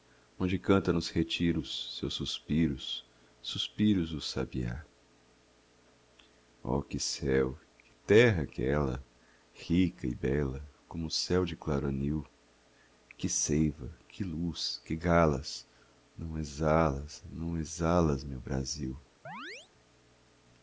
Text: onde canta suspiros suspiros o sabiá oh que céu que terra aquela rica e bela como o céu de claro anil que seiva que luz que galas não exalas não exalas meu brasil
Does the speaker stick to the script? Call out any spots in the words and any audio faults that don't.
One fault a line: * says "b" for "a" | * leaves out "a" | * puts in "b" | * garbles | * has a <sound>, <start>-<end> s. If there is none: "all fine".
* puts in "nos retiros seus"
* has a chirp, 19.3-19.7 s